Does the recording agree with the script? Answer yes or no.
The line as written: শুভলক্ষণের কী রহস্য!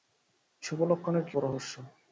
yes